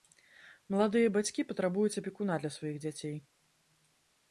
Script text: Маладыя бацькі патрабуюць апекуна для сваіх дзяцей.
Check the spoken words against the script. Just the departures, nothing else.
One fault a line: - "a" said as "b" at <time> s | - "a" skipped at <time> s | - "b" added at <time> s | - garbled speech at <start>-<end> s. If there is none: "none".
none